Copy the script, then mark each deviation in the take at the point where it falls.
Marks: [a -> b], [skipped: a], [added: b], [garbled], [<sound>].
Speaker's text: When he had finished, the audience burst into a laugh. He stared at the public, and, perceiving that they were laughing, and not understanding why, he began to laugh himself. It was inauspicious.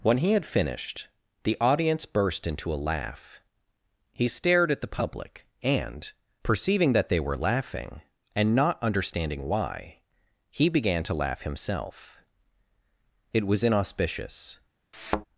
When he had finished, the audience burst into a laugh. He stared at the public, and, perceiving that they were laughing, and not understanding why, he began to laugh himself. It was inauspicious. [thud]